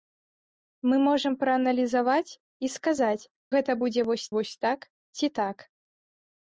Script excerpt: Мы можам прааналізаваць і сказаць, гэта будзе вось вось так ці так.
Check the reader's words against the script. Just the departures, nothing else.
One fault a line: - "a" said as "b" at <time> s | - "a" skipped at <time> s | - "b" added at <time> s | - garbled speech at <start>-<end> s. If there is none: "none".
none